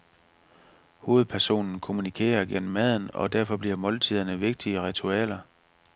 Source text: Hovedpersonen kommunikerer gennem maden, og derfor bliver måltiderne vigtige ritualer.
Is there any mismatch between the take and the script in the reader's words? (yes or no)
no